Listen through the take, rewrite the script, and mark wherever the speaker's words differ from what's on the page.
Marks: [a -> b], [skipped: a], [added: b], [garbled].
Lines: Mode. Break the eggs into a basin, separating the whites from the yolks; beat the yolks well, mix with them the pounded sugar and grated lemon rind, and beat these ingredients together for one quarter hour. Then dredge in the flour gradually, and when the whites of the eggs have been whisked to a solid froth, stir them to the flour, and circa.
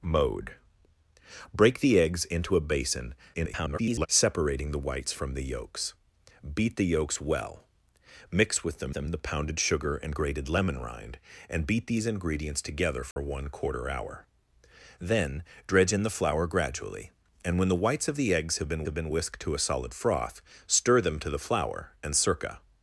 Mode. Break the eggs into a basin, [garbled] separating the whites from the yolks; beat the yolks well, mix with them [added: them] the pounded sugar and grated lemon rind, and beat these ingredients together for one quarter hour. Then dredge in the flour gradually, and when the whites of the eggs have been [added: have been] whisked to a solid froth, stir them to the flour, and circa.